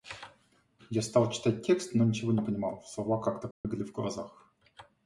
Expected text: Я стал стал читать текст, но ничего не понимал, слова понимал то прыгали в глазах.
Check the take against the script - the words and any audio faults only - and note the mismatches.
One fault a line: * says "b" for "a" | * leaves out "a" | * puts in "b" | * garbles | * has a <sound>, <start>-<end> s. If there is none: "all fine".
* leaves out "стал"
* says "как" for "понимал"
* has a dropout, 3.5-3.6 s